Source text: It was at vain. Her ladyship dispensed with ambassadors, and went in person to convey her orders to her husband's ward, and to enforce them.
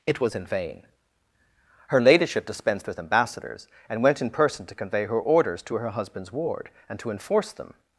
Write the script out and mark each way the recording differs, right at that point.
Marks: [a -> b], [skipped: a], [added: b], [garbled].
It was [at -> in] vain. Her ladyship dispensed with ambassadors, and went in person to convey her orders to her husband's ward, and to enforce them.